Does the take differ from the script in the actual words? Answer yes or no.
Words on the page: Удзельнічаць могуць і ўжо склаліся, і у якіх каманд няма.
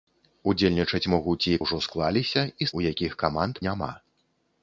no